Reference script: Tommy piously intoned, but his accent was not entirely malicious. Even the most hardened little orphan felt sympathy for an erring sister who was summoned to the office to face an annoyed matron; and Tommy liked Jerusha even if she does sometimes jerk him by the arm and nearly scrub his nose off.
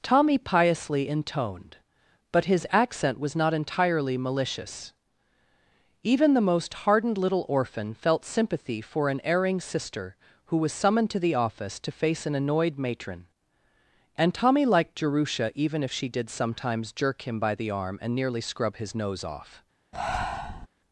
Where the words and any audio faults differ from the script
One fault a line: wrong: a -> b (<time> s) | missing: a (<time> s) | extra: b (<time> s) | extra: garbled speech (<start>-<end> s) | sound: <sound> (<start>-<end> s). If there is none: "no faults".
wrong: does -> did (16.1 s)
sound: breath (19.9-20.7 s)